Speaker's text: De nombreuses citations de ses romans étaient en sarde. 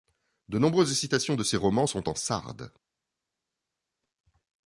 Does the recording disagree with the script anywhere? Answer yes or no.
yes